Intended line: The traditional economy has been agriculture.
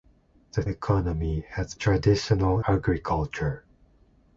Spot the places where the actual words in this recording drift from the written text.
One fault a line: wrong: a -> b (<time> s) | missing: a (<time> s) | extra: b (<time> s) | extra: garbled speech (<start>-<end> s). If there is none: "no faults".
missing: traditional (0.6 s)
wrong: been -> traditional (1.7 s)